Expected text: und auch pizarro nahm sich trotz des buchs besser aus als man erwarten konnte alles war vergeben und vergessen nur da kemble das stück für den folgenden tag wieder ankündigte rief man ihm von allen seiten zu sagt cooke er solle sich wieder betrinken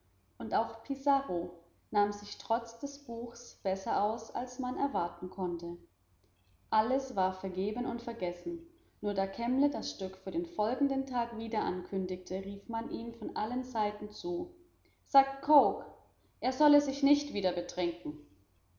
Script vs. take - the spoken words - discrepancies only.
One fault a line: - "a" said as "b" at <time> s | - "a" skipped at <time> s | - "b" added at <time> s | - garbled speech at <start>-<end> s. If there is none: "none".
- "nicht" added at 17.0 s